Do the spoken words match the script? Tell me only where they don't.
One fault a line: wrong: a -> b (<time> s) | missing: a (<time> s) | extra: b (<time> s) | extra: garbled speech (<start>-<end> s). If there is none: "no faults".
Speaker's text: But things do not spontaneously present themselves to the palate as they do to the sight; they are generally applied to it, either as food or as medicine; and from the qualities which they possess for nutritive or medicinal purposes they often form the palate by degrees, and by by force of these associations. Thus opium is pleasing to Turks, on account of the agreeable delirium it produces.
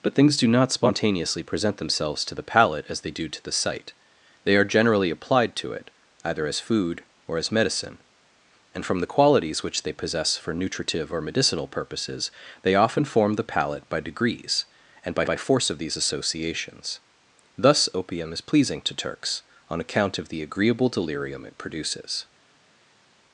no faults